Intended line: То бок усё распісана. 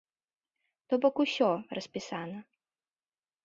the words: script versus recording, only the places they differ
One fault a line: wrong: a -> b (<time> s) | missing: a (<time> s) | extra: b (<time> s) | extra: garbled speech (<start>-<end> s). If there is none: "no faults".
no faults